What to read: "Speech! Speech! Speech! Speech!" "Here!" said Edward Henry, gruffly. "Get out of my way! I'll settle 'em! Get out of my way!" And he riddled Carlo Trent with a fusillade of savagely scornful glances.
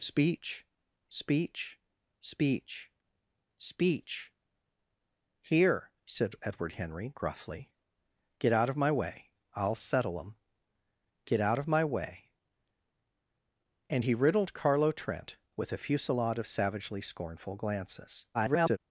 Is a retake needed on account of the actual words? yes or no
yes